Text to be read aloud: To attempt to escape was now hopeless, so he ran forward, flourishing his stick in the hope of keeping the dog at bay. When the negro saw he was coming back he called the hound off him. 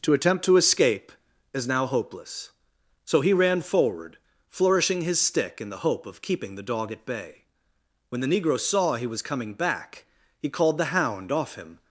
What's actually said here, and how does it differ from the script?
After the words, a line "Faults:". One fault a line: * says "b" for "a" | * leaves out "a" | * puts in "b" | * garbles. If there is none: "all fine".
To attempt to escape is now hopeless, so he ran forward, flourishing his stick in the hope of keeping the dog at bay. When the negro saw he was coming back he called the hound off him.
Faults:
* says "is" for "was"